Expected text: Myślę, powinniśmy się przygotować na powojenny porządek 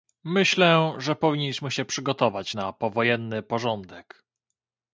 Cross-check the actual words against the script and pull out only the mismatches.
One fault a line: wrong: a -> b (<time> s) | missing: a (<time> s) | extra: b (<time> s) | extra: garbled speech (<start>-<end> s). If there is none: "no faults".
extra: że (1.0 s)